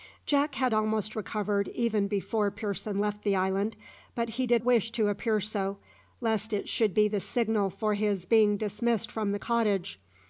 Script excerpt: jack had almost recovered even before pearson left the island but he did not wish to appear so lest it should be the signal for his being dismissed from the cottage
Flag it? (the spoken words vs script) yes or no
yes